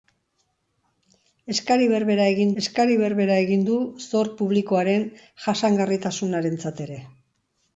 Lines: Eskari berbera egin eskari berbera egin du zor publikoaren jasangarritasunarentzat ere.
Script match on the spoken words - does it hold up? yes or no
yes